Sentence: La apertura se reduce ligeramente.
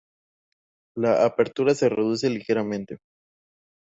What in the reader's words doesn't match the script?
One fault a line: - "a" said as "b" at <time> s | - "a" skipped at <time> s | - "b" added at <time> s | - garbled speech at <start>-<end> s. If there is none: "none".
none